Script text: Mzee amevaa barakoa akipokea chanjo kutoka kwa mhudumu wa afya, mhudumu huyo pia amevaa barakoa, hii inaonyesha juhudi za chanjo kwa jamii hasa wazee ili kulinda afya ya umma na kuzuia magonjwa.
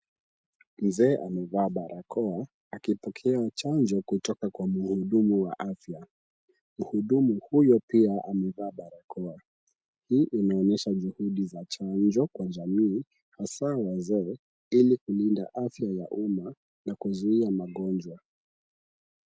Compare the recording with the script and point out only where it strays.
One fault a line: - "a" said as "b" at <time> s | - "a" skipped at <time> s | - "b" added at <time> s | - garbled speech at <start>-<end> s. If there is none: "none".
none